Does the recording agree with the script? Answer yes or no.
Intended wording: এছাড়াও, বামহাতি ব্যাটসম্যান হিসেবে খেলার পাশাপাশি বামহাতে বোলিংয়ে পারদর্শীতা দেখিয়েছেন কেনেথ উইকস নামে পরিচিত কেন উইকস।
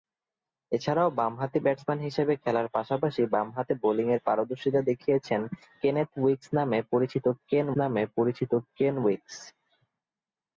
no